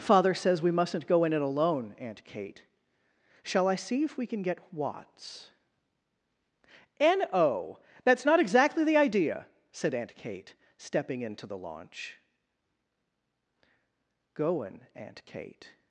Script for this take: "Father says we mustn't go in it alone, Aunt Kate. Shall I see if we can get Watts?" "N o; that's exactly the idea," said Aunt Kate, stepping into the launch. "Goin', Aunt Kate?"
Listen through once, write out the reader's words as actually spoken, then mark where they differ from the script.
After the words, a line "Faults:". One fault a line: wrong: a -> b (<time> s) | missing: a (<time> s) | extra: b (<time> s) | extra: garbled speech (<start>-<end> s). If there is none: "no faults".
"Father says we mustn't go in it alone, Aunt Kate. Shall I see if we can get Watts?" "N o; that's not exactly the idea," said Aunt Kate, stepping into the launch. "Goin', Aunt Kate?"
Faults:
extra: not (8.2 s)